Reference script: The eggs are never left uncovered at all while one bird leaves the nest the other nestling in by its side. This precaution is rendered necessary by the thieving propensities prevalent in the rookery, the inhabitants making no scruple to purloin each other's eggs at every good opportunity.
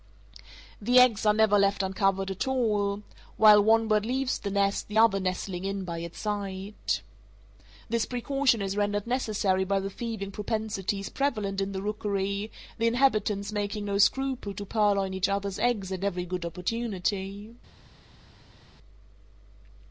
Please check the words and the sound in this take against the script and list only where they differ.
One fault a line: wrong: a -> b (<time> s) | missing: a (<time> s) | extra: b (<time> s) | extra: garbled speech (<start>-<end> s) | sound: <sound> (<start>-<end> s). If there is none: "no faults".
no faults